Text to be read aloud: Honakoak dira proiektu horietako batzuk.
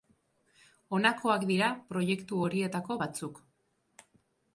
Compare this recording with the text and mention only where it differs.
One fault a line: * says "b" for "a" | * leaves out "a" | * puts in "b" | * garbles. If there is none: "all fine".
all fine